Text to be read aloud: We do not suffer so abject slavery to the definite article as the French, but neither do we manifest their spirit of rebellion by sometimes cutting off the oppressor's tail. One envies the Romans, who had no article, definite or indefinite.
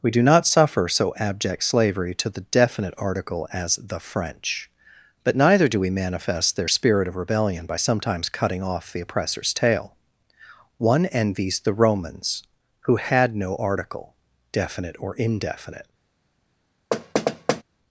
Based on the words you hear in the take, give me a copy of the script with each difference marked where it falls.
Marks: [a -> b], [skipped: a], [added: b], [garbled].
We do not suffer so abject slavery to the definite article as the French, but neither do we manifest their spirit of rebellion by sometimes cutting off the oppressor's tail. One envies the Romans, who had no article, definite or indefinite.